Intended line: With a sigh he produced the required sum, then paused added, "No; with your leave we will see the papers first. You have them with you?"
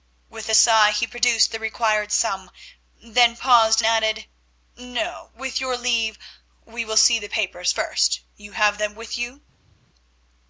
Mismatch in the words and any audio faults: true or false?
false